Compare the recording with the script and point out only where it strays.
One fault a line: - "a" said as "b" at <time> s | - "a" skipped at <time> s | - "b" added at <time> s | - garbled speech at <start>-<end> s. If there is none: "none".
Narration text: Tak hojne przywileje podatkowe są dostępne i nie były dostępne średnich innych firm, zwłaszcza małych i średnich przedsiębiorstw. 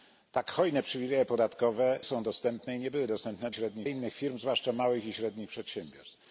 none